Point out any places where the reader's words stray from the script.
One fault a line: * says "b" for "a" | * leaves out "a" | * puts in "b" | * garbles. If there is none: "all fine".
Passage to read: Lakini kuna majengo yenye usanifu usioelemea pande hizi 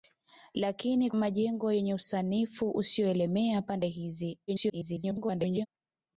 * leaves out "kuna"
* garbles